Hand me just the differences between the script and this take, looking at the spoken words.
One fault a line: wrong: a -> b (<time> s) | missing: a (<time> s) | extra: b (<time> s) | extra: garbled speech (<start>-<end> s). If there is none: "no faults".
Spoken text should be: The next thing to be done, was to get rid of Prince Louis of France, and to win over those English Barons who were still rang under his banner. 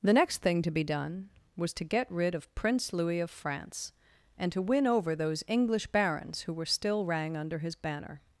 no faults